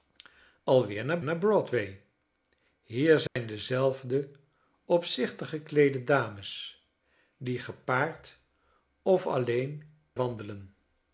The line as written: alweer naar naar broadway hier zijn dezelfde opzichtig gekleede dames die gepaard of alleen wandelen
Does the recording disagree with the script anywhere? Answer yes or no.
no